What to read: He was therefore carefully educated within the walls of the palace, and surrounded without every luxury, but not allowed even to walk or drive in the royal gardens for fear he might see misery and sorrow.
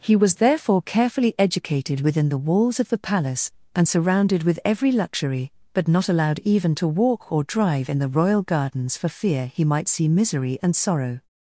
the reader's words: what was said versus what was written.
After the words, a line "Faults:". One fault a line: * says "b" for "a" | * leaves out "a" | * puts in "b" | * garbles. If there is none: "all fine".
He was therefore carefully educated within the walls of the palace, and surrounded with every luxury, but not allowed even to walk or drive in the royal gardens for fear he might see misery and sorrow.
Faults:
* says "with" for "without"